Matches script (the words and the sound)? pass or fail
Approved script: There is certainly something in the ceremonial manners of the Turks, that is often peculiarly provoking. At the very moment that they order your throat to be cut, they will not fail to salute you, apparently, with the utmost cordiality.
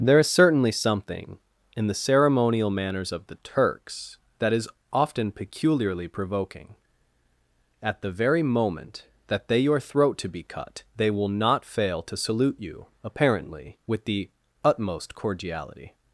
fail